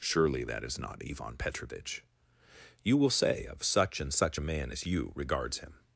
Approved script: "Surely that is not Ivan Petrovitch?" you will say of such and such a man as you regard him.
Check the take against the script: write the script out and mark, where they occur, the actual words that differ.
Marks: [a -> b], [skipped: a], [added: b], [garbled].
"Surely that is not Ivan Petrovitch?" you will say of such and such a man as you [regard -> regards] him.